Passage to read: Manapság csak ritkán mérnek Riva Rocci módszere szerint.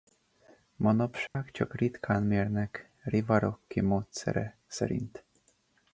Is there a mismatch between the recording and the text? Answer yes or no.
no